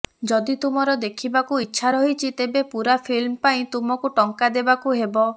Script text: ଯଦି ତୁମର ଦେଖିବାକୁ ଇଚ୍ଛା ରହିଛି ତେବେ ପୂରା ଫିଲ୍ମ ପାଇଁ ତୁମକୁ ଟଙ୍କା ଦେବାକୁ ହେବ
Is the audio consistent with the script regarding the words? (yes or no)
yes